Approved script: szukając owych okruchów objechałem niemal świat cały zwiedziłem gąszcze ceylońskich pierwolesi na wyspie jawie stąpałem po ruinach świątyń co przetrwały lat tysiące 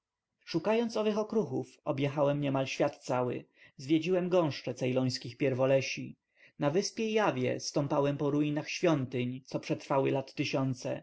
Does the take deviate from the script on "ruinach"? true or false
false